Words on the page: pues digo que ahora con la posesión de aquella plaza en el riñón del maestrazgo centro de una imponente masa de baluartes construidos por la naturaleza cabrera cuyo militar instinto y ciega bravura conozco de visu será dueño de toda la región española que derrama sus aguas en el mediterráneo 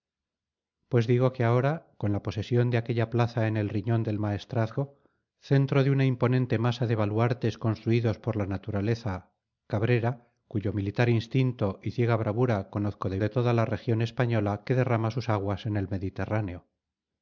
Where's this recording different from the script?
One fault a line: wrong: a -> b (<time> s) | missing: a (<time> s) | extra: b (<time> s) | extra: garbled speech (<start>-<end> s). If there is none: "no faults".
missing: visu será dueño (13.2 s)